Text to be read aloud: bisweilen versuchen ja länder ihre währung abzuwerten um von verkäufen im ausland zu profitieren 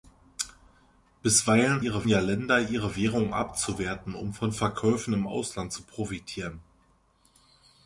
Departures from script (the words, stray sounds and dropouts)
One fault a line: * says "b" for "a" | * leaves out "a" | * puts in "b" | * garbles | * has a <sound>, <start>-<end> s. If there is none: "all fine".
* says "ihre" for "versuchen"